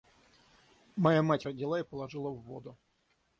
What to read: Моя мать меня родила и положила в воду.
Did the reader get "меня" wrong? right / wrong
wrong